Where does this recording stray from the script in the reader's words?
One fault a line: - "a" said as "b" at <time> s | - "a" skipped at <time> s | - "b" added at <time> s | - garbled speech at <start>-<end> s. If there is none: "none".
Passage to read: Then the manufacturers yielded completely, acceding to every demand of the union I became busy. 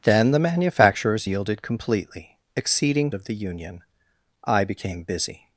- "to every demand" skipped at 3.1 s